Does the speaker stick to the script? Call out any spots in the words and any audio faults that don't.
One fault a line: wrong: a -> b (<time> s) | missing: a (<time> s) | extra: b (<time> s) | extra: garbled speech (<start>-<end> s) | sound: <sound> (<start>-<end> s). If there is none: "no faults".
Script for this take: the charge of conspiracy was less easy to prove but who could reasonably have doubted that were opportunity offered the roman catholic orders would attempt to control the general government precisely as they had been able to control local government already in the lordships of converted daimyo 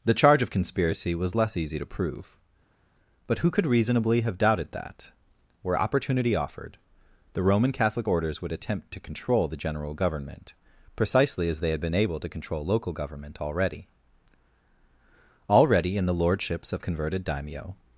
extra: already (15.5 s)